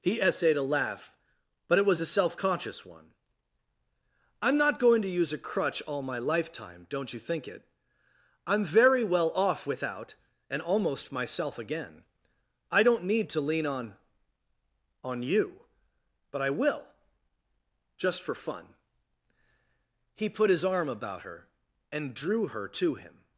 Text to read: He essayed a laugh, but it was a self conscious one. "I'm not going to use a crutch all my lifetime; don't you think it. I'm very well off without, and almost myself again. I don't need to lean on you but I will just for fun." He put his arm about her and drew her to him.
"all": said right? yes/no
yes